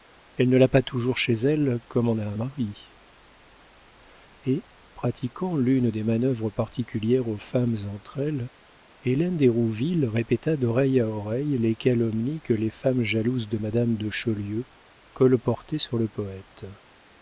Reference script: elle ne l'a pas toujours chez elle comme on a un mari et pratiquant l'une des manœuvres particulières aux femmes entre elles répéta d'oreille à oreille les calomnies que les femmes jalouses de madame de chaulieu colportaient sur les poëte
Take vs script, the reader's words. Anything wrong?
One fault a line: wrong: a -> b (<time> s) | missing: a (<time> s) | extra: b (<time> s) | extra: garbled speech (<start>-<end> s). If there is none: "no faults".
extra: hélène d'hérouville (9.0 s)
wrong: les -> le (16.0 s)